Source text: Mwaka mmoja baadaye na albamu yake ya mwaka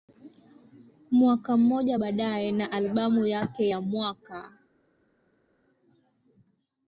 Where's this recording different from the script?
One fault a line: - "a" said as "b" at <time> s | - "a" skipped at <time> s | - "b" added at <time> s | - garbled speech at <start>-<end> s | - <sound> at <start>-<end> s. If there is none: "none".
none